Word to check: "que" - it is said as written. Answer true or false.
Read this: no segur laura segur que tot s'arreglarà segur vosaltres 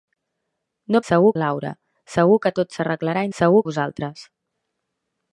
true